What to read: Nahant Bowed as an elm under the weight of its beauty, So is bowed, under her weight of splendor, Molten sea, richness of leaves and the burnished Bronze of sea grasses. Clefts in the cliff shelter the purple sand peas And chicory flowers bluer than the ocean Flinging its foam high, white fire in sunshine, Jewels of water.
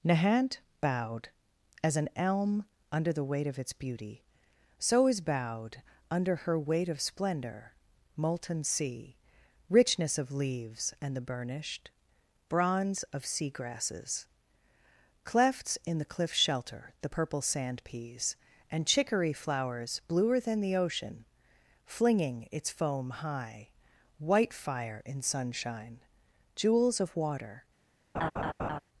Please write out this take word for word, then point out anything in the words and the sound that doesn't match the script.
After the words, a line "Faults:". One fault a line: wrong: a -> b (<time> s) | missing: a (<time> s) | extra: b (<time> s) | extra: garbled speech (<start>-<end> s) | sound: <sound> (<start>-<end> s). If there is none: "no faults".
Nahant Bowed as an elm under the weight of its beauty, So is bowed, under her weight of splendor, Molten sea, richness of leaves and the burnished Bronze of sea grasses. Clefts in the cliff shelter the purple sand peas And chicory flowers bluer than the ocean Flinging its foam high, white fire in sunshine, Jewels of water.
Faults:
sound: laugh (28.1-28.8 s)